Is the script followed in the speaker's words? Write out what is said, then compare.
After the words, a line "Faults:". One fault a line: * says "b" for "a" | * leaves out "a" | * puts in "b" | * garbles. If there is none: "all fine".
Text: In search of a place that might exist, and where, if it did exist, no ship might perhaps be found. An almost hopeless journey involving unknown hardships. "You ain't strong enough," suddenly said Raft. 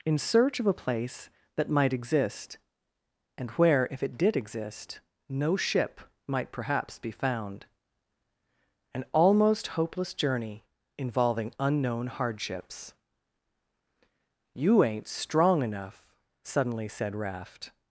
In search of a place that might exist, and where, if it did exist, no ship might perhaps be found. An almost hopeless journey involving unknown hardships. "You ain't strong enough," suddenly said Raft.
Faults:
all fine